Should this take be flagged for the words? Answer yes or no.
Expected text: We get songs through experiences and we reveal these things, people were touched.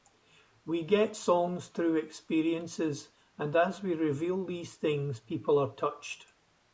yes